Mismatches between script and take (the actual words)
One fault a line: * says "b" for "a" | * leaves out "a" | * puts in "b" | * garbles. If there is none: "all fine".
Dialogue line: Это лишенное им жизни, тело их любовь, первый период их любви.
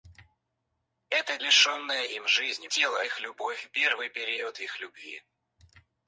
all fine